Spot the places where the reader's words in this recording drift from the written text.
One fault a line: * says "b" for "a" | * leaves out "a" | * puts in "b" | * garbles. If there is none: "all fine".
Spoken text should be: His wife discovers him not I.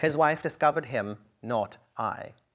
* says "discovered" for "discovers"